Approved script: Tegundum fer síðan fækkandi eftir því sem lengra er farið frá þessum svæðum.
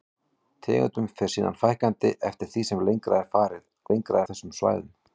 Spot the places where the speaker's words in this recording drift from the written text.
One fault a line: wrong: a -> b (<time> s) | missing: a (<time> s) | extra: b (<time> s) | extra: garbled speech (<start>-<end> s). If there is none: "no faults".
wrong: frá -> lengra (3.9 s)